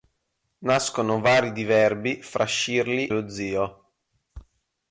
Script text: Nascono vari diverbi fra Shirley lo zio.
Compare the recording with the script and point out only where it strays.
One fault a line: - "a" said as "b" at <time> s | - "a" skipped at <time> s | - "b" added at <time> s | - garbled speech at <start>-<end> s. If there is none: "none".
none